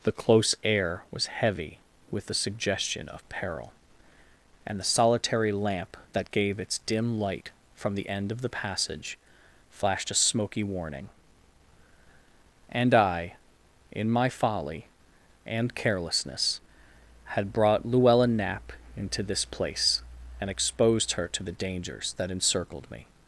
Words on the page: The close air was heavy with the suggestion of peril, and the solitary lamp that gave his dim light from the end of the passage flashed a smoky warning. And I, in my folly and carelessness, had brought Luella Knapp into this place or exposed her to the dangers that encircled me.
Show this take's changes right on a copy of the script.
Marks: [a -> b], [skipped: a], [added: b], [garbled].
The close air was heavy with the suggestion of peril, and the solitary lamp that gave [his -> its] dim light from the end of the passage flashed a smoky warning. And I, in my folly and carelessness, had brought Luella Knapp into this place [or -> and] exposed her to the dangers that encircled me.